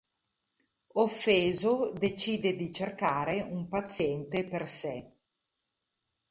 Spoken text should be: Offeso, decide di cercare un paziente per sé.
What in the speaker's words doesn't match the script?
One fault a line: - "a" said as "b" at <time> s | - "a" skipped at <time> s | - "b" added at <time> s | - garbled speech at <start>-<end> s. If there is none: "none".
none